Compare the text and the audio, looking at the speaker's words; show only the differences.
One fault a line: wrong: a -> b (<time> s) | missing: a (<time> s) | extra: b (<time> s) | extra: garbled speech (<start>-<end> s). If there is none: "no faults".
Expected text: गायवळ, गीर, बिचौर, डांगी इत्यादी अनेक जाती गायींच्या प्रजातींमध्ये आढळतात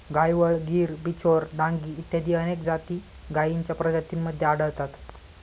no faults